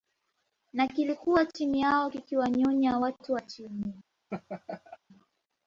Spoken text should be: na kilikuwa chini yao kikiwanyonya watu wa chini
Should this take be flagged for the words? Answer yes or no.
no